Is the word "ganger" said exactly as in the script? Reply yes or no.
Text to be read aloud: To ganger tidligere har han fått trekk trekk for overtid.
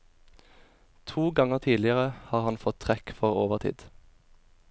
yes